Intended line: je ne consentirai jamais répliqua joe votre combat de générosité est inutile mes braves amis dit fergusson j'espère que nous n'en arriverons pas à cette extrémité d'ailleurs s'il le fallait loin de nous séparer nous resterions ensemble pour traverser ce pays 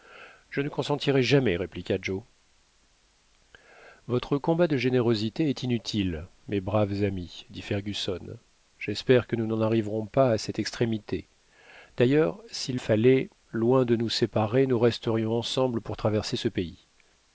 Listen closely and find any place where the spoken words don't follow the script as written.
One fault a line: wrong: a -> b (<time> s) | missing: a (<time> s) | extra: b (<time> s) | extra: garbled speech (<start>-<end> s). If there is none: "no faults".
missing: le (12.8 s)